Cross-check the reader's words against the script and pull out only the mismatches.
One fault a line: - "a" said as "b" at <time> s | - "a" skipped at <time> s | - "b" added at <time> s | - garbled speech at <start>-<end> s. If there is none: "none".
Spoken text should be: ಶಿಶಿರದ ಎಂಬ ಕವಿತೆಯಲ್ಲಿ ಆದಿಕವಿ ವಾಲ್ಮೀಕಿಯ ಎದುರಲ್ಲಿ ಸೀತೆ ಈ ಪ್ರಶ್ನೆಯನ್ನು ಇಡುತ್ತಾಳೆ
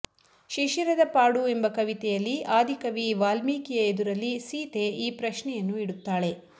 - "ಪಾಡು" added at 1.1 s